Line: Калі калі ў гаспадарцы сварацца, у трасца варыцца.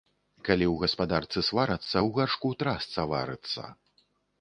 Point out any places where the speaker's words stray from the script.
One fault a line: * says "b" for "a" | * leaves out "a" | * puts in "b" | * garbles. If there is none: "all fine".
* leaves out "калі"
* puts in "гаршку"